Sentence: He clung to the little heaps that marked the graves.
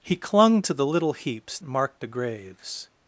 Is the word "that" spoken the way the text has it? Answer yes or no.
no